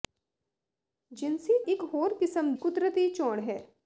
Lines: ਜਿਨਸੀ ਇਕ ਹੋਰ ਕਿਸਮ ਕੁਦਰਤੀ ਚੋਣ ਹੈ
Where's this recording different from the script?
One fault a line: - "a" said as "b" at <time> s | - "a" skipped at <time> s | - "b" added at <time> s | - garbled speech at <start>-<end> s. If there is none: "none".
none